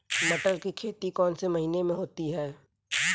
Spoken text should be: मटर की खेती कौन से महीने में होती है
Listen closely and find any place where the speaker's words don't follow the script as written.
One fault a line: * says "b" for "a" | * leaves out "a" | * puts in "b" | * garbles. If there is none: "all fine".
all fine